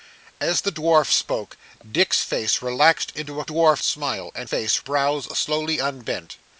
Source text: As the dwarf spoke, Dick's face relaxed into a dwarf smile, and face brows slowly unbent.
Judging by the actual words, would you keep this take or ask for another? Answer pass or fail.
pass